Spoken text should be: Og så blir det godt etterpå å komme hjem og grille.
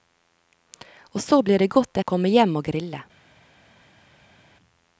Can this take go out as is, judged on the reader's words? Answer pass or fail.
fail